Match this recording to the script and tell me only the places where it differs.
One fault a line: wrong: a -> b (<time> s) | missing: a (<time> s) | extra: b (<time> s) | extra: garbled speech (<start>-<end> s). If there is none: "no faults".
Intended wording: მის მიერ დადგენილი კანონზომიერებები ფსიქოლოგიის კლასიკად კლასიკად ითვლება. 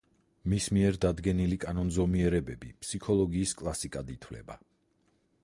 missing: კლასიკად (4.2 s)